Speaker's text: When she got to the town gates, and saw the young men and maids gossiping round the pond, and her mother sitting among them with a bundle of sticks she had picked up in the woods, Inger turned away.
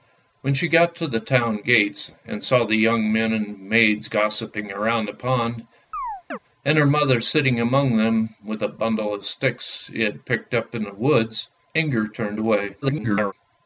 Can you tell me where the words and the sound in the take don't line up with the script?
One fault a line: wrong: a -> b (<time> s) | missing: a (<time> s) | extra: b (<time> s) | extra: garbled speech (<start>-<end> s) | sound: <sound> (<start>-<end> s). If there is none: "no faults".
sound: chirp (5.9-6.4 s)
extra: garbled speech (12.8-13.3 s)